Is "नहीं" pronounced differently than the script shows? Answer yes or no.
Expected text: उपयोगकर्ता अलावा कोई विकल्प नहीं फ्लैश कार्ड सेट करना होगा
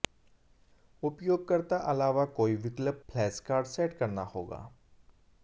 yes